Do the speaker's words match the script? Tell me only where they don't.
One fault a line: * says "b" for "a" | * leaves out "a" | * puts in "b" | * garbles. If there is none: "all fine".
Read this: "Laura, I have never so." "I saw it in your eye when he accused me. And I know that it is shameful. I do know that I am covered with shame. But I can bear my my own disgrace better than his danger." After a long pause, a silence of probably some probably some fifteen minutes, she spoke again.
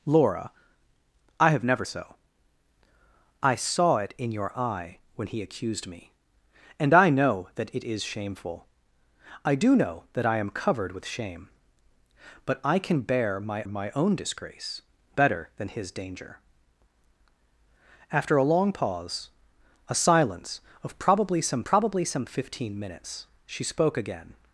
all fine